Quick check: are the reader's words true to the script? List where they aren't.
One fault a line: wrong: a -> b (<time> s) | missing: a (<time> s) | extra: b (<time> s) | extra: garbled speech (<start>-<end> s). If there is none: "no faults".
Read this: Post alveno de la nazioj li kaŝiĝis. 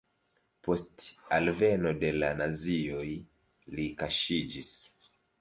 no faults